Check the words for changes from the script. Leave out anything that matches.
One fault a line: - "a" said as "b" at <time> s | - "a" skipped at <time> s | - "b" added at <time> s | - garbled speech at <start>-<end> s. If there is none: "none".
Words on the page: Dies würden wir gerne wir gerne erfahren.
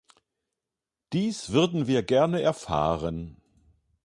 - "wir gerne" skipped at 2.4 s